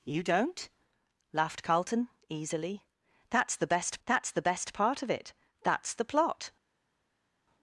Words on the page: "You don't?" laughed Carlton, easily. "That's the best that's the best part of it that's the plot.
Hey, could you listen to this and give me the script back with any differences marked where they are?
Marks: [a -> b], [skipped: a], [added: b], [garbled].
"You don't?" laughed Carlton, easily. "That's the best that's the best part of it that's the plot.